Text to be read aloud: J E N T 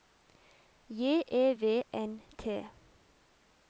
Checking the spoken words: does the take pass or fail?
fail